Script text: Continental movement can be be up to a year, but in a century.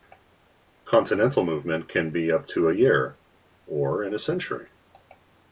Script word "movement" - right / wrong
right